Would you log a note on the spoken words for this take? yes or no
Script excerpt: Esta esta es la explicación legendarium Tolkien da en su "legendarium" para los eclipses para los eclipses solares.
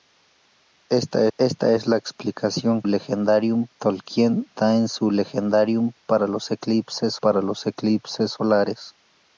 no